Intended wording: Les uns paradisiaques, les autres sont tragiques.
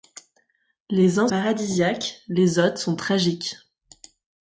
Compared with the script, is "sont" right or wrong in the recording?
right